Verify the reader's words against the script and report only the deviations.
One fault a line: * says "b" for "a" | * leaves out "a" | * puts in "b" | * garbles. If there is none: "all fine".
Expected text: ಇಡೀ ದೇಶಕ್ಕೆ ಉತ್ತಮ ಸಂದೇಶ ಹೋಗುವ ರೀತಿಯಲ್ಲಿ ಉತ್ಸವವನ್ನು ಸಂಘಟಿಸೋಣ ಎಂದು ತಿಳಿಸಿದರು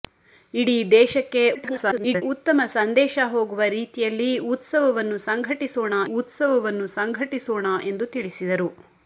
* garbles
* puts in "ಉತ್ಸವವನ್ನು ಸಂಘಟಿಸೋಣ"